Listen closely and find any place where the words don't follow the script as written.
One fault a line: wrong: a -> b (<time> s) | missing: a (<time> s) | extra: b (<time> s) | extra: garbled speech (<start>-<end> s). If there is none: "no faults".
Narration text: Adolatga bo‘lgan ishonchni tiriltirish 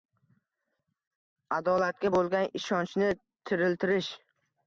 no faults